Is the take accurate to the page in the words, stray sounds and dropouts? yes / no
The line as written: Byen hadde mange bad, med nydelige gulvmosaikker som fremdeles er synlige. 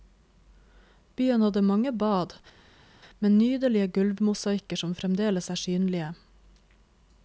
yes